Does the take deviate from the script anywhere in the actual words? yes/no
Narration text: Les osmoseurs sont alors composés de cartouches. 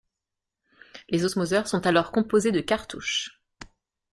no